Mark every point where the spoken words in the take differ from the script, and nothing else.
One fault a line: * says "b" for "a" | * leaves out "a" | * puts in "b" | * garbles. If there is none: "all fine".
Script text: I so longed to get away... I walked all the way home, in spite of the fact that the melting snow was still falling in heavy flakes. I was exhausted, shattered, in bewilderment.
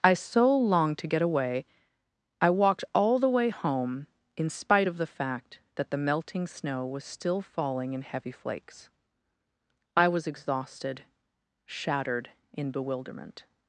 all fine